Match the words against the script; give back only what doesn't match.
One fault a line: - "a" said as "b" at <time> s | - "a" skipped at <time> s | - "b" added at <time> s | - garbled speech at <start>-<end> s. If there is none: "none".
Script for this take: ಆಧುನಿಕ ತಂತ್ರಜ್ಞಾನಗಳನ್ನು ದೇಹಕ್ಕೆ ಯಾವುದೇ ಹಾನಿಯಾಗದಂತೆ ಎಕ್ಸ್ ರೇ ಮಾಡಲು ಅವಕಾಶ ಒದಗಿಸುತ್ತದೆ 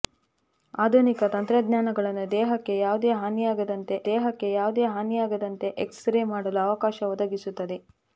- "ದೇಹಕ್ಕೆ ಯಾವುದೇ ಹಾನಿಯಾಗದಂತೆ" added at 4.1 s